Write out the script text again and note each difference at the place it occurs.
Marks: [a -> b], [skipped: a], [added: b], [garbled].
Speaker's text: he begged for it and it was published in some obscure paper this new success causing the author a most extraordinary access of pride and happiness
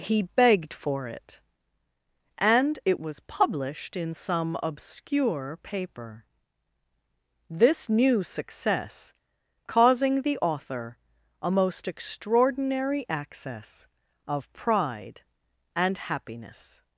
he begged for it and it was published in some obscure paper this new success causing the author a most extraordinary access of pride and happiness